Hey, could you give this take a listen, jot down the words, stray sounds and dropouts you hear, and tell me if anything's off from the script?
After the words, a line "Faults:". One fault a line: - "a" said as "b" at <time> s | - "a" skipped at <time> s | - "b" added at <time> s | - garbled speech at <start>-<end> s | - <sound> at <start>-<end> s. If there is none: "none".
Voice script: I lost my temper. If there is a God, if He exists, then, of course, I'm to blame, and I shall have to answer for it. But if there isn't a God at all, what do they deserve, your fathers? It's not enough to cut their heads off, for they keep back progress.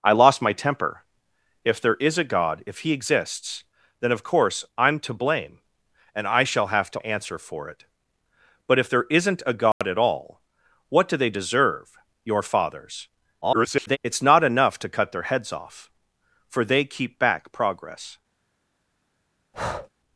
I lost my temper. If there is a God, if He exists, then, of course, I'm to blame, and I shall have to answer for it. But if there isn't a God at all, what do they deserve, your fathers? [garbled] It's not enough to cut their heads off, for they keep back progress.
Faults:
- dropout at 9.7-9.8 s
- garbled speech at 13.4-14.0 s
- breath at 19.5-19.9 s